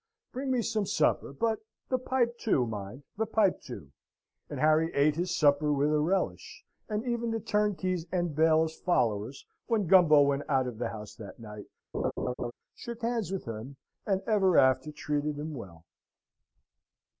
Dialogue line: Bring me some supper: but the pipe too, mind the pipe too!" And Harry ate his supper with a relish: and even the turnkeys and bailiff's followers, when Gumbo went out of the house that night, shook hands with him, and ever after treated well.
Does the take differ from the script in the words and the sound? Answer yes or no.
yes